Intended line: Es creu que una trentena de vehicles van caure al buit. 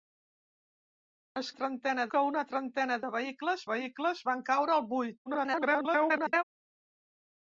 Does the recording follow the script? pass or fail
fail